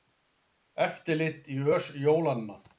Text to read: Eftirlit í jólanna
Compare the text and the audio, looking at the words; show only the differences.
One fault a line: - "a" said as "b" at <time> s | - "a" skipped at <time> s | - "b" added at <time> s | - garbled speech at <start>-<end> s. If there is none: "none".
- "ös" added at 1.7 s